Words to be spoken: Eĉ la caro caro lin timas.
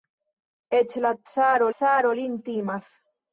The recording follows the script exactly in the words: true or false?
true